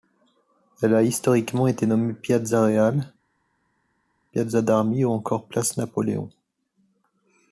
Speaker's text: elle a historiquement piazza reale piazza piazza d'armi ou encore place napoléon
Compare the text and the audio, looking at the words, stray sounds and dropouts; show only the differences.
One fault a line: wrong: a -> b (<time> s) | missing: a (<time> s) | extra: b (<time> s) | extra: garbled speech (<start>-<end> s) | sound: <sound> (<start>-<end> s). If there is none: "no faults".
extra: été nommée (1.7 s)
missing: piazza (4.6 s)